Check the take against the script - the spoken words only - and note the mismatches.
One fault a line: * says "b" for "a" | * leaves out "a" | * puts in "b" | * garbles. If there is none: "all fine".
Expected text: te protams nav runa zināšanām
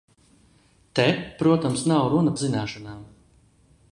all fine